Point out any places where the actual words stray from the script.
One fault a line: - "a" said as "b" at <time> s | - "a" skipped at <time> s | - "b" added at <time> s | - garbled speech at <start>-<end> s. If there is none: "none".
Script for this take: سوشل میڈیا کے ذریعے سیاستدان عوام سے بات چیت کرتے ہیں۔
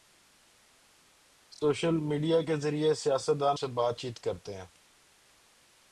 - "عوام" skipped at 3.6 s